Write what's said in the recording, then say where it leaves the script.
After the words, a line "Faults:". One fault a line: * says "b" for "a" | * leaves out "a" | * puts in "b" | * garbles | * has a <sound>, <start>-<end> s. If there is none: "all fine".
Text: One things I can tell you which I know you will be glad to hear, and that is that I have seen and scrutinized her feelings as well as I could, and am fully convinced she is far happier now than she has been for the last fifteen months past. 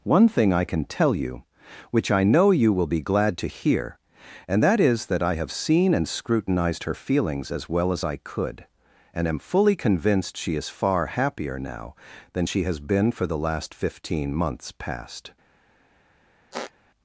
One thing I can tell you which I know you will be glad to hear, and that is that I have seen and scrutinized her feelings as well as I could, and am fully convinced she is far happier now than she has been for the last fifteen months past.
Faults:
* says "thing" for "things"
* has a squeak, 16.5-16.7 s